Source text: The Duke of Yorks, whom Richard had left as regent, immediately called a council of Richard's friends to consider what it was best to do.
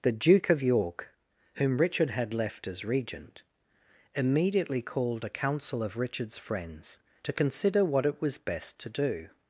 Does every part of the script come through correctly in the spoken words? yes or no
no